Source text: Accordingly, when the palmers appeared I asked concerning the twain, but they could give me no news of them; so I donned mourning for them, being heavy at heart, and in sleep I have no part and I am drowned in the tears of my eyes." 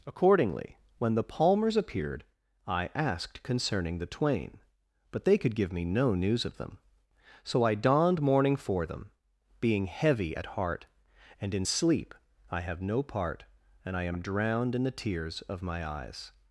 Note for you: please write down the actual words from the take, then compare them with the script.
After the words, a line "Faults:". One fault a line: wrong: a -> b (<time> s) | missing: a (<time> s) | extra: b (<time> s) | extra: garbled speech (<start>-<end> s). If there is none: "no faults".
Accordingly, when the palmers appeared I asked concerning the twain, but they could give me no news of them; so I donned mourning for them, being heavy at heart, and in sleep I have no part and I am drowned in the tears of my eyes."
Faults:
no faults